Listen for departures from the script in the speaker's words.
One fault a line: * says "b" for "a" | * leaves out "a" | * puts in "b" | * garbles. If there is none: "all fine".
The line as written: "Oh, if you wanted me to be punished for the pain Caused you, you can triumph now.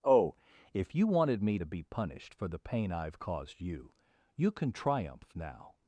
* puts in "I've"